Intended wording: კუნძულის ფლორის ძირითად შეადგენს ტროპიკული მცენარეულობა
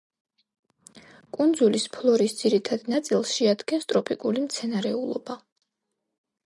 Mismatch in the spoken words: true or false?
true